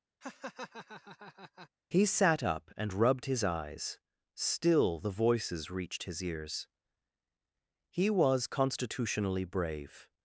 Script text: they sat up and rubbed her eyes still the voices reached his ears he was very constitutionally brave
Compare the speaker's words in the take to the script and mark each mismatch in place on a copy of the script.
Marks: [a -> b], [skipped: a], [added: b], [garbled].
[they -> he] sat up and rubbed [her -> his] eyes still the voices reached his ears he was [skipped: very] constitutionally brave